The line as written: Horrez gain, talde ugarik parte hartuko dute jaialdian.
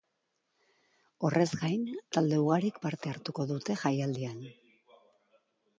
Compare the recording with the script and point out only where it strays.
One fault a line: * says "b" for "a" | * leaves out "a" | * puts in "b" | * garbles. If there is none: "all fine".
all fine